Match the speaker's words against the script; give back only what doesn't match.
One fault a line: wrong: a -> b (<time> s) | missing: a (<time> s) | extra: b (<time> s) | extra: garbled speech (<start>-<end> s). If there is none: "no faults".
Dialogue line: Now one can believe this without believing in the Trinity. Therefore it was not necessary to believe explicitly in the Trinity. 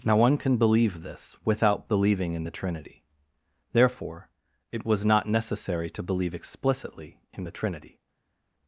no faults